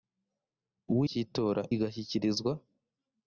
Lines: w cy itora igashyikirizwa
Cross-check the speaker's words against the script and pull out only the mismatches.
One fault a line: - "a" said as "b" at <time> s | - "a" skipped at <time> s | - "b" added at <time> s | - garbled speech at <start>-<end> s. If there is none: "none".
none